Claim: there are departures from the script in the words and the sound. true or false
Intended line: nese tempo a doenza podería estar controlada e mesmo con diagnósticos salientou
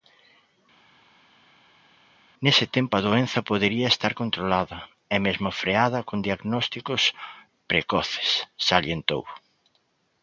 true